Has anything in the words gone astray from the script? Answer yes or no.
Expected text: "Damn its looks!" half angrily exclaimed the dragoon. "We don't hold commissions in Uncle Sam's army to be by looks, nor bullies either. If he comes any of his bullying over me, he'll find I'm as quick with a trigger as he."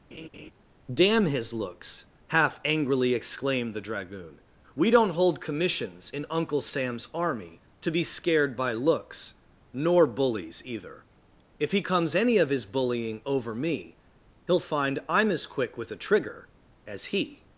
yes